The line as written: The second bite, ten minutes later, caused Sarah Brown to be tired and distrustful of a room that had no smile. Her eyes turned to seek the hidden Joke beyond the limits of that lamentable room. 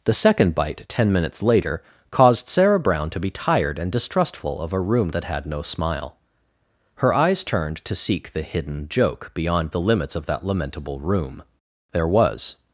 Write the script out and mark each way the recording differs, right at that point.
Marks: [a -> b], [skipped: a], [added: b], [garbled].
The second bite, ten minutes later, caused Sarah Brown to be tired and distrustful of a room that had no smile. Her eyes turned to seek the hidden Joke beyond the limits of that lamentable room. [added: There was]